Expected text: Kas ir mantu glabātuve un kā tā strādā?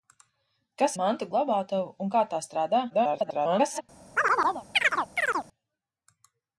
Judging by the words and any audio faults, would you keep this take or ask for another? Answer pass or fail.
fail